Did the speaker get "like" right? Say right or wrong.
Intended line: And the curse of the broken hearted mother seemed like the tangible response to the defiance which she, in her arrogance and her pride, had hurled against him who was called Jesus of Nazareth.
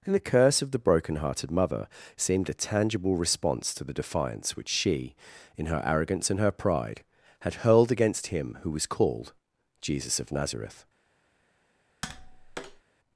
wrong